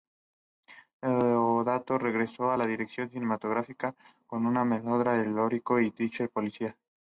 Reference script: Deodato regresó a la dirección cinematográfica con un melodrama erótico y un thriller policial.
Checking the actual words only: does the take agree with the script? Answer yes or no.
yes